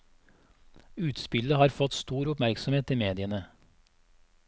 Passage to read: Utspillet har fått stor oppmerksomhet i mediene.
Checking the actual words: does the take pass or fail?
pass